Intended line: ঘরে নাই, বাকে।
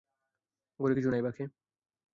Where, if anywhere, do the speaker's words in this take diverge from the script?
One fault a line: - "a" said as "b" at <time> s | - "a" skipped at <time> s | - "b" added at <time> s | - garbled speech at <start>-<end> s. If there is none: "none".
- "কিছু" added at 0.9 s